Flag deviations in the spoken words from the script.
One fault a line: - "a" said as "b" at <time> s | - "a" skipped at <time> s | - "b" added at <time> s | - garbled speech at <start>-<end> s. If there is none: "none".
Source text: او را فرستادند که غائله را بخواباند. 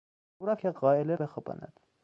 - "فرستادند" skipped at 0.6 s
- "را" skipped at 1.1 s